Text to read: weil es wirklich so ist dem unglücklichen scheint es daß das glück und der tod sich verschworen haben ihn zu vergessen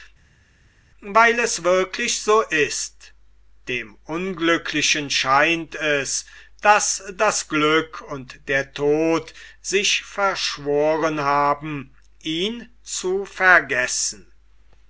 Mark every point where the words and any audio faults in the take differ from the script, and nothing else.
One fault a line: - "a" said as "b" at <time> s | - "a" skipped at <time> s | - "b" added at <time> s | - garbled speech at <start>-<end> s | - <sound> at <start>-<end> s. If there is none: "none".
none